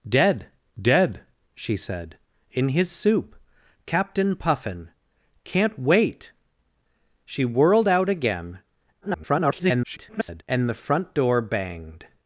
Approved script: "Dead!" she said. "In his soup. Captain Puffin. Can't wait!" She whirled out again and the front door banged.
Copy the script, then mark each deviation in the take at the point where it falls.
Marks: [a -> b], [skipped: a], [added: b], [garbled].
"Dead!" [added: dead] she said. "In his soup. Captain Puffin. Can't wait!" She whirled out again [garbled] and the front door banged.